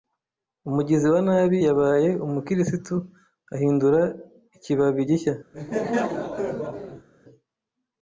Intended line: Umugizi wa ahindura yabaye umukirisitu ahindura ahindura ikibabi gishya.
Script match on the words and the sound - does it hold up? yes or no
no